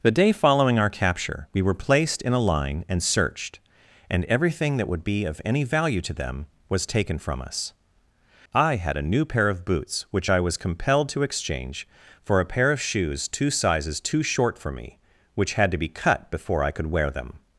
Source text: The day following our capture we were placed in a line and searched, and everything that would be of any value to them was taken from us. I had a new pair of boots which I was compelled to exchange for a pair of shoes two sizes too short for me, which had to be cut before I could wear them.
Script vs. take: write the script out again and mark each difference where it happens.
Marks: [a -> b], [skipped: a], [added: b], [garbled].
The day following our capture we were placed in a line and searched, and everything that would be of any value to them was taken from us. I had a new pair of boots which I was compelled to exchange for a pair of shoes two sizes too short for me, which had to be cut before I could wear them.